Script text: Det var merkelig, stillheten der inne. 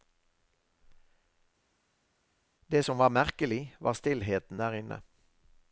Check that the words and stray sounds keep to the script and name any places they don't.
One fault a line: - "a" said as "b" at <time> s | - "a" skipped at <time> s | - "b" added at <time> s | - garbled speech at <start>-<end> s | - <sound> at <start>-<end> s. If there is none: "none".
- "som" added at 2.8 s
- "var" added at 3.8 s